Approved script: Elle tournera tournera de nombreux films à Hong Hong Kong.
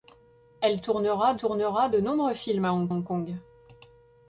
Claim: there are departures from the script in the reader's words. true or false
false